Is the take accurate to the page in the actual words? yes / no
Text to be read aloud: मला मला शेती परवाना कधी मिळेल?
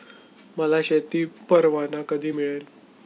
no